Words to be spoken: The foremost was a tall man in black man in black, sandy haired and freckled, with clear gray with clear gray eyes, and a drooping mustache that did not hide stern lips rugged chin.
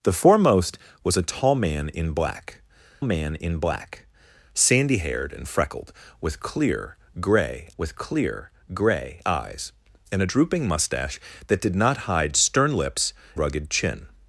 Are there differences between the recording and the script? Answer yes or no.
no